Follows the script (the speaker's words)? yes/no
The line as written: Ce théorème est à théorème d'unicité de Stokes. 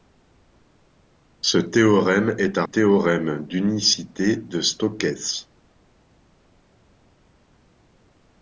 yes